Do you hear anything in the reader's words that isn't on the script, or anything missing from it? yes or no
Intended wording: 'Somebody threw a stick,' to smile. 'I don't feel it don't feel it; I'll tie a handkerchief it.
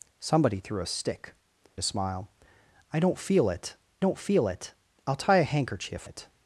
no